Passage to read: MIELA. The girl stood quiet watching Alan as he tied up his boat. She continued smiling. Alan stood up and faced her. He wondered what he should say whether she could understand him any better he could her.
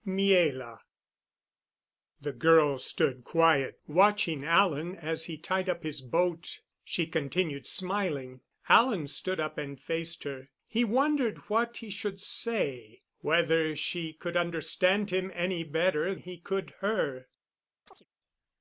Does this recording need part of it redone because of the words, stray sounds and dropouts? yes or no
yes